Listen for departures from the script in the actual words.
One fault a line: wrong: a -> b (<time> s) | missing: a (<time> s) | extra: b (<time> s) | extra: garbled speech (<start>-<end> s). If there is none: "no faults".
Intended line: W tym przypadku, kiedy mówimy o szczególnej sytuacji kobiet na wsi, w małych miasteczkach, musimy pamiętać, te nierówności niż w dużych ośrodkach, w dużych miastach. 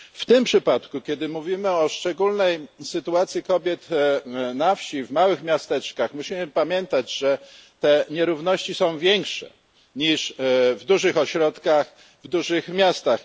extra: że (7.2 s)
extra: są większe (8.8 s)